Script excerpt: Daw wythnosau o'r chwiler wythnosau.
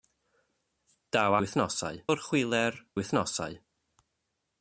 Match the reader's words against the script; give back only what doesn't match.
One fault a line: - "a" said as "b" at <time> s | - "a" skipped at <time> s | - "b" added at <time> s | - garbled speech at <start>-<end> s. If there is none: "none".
none